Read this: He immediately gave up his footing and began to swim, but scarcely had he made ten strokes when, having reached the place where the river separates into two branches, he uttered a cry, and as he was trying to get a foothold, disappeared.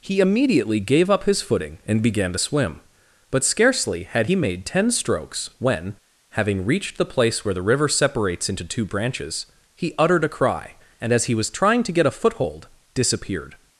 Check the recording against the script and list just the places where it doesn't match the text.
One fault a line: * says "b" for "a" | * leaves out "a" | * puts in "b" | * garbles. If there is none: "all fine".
all fine